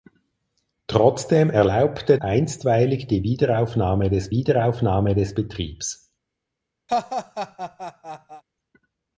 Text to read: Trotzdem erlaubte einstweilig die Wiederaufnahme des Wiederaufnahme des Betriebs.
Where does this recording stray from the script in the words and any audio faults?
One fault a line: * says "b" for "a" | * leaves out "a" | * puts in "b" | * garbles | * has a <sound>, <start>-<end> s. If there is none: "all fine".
* has a laugh, 6.9-8.4 s